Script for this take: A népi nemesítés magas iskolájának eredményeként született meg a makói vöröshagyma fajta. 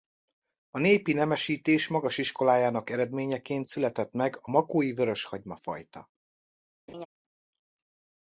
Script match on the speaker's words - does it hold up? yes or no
yes